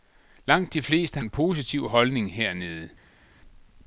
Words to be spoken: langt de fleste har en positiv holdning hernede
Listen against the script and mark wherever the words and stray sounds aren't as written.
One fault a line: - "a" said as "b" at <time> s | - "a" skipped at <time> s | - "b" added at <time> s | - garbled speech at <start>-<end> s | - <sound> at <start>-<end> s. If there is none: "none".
- "har" skipped at 1.2 s